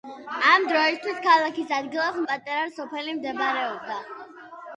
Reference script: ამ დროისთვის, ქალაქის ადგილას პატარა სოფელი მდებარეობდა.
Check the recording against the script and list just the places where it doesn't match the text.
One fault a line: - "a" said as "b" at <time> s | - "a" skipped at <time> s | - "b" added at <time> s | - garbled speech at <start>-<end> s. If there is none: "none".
none